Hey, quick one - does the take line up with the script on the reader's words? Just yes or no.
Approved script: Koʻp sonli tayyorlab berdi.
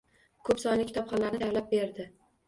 no